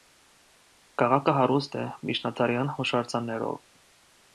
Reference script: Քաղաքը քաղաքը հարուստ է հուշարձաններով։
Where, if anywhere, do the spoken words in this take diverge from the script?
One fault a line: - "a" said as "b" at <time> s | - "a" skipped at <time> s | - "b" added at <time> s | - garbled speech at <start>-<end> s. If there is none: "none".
- "քաղաքը" skipped at 1.4 s
- "միջնադարյան" added at 2.1 s